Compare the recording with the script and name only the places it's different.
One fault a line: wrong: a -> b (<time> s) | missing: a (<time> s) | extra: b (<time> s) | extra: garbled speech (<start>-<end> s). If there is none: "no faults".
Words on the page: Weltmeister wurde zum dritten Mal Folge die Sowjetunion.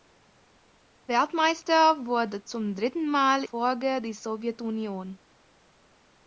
no faults